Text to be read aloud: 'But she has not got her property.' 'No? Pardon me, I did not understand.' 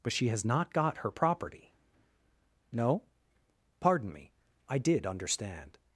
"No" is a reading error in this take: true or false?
false